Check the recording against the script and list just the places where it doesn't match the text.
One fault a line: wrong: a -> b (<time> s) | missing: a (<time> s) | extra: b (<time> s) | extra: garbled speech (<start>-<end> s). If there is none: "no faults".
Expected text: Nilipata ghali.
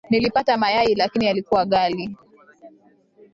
extra: mayai lakini yalikuwa (0.6 s)